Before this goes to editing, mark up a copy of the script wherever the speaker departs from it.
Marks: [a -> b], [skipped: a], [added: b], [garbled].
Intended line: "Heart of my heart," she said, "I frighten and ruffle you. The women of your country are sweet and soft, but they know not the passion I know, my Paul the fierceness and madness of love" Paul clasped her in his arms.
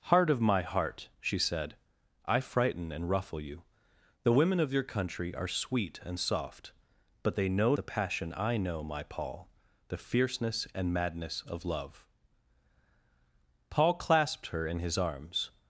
"Heart of my heart," she said, "I frighten and ruffle you. The women of your country are sweet and soft, but they know [skipped: not] the passion I know, my Paul the fierceness and madness of love" Paul clasped her in his arms.